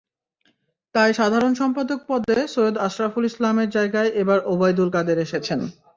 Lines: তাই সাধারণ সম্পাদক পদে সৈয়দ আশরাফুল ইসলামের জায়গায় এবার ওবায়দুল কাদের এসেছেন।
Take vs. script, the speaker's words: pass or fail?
pass